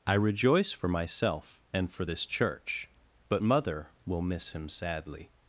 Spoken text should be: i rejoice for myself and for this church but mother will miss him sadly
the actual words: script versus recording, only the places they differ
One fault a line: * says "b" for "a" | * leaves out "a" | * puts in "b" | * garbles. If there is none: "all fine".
all fine